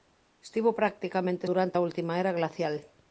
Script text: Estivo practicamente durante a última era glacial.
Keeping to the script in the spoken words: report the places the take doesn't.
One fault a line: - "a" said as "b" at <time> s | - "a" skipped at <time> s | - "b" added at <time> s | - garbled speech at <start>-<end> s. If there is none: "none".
none